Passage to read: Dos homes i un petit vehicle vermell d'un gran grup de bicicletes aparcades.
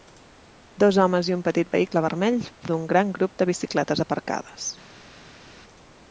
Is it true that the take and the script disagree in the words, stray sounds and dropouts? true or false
false